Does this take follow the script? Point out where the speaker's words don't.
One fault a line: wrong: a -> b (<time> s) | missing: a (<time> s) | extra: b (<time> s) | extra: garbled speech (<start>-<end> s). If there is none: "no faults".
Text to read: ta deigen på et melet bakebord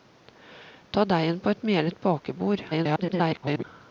extra: garbled speech (2.7-3.6 s)